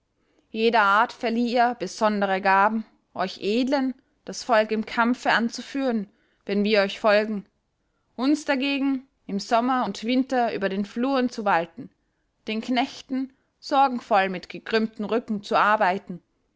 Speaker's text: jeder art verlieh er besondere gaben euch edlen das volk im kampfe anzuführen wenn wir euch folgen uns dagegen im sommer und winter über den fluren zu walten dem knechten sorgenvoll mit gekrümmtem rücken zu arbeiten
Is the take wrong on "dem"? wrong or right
wrong